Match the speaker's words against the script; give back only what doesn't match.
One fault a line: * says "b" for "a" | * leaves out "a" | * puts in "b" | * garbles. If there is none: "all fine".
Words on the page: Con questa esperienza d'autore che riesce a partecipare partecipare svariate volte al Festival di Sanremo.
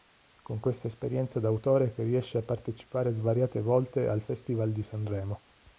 * leaves out "partecipare"